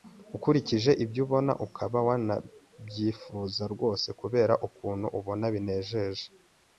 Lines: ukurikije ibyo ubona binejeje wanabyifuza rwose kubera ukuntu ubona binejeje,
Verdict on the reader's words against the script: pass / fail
fail